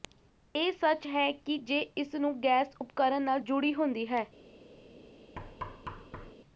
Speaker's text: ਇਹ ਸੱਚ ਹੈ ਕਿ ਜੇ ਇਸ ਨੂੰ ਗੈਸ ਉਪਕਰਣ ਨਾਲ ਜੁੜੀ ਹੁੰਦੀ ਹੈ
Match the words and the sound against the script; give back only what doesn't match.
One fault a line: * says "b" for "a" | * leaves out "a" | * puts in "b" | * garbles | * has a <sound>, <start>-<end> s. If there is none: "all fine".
* has a thud, 5.4-6.3 s